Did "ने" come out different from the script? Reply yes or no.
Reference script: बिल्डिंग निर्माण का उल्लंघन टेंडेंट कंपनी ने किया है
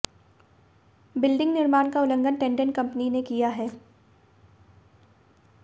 no